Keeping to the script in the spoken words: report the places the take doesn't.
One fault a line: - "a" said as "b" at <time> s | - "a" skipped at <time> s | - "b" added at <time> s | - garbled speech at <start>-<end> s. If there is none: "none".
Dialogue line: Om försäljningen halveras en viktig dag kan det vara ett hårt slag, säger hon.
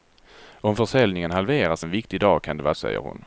- "ett hårt slag" skipped at 2.7 s